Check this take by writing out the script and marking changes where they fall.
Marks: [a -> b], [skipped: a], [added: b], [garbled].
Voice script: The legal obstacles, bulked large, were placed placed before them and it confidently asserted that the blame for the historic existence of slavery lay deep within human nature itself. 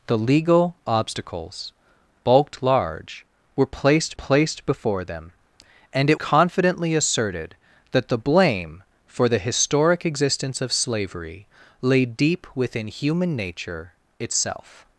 The legal obstacles, bulked large, were placed placed before them and it confidently asserted that the blame for the historic existence of slavery lay deep within human nature itself.